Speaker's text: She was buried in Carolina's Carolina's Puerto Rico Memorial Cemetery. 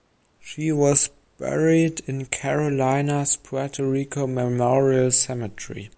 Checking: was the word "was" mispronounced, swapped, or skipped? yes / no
no